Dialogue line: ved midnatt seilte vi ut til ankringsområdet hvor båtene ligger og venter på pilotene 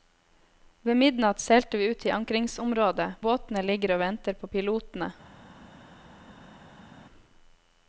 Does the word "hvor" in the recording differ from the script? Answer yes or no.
yes